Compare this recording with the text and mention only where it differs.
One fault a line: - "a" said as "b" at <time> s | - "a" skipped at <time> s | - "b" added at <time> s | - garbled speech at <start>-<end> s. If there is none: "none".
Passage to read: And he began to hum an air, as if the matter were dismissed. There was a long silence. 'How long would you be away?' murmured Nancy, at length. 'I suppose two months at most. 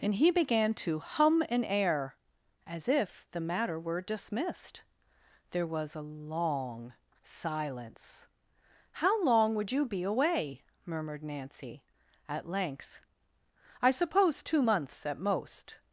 none